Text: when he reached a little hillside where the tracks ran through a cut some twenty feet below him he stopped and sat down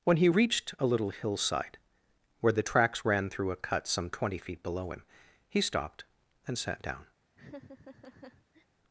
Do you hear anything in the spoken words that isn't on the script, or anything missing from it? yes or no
no